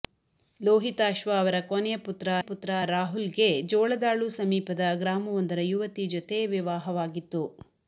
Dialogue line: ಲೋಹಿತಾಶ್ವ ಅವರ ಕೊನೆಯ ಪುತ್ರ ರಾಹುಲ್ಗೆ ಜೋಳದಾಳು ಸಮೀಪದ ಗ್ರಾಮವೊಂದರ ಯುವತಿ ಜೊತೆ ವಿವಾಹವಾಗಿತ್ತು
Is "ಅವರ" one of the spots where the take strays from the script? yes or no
no